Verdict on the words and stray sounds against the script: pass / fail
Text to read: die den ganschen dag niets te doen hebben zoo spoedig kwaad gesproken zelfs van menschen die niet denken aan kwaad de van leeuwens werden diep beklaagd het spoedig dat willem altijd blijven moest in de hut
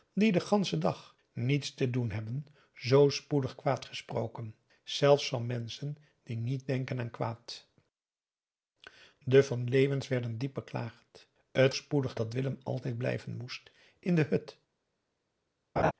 fail